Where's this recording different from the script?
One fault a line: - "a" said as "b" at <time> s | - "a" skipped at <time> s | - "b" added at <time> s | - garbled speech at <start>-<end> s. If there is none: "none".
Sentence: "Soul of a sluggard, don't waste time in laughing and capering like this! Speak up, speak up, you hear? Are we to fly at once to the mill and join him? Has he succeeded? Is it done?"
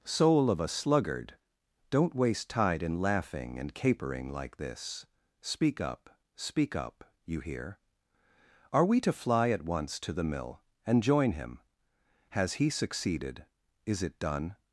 - "time" said as "tide" at 2.5 s